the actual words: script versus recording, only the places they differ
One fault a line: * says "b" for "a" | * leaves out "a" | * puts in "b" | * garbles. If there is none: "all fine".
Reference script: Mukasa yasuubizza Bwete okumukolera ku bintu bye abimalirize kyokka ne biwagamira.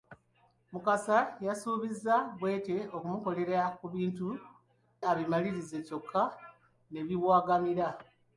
* leaves out "bye"